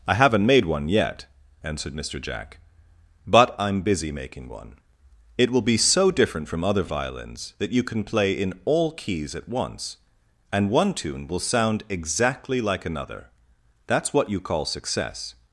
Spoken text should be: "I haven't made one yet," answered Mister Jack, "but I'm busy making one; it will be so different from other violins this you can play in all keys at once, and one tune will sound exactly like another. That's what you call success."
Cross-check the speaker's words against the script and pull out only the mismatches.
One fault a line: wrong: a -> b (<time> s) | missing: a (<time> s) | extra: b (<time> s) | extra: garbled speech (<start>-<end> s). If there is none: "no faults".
wrong: this -> that (7.6 s)